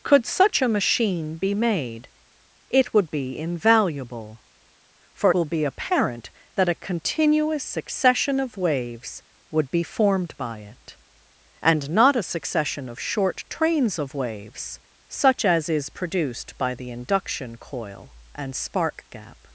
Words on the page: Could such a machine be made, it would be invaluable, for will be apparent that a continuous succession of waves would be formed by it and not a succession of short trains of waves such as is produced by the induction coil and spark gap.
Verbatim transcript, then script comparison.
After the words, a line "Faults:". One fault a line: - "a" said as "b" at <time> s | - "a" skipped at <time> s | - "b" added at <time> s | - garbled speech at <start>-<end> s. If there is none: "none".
Could such a machine be made, it would be invaluable, for will be apparent that a continuous succession of waves would be formed by it and not a succession of short trains of waves such as is produced by the induction coil and spark gap.
Faults:
none